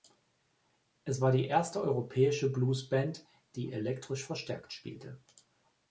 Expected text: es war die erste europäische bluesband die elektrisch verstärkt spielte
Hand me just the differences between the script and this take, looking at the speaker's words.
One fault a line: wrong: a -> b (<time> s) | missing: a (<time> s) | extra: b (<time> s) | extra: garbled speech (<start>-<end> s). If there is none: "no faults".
no faults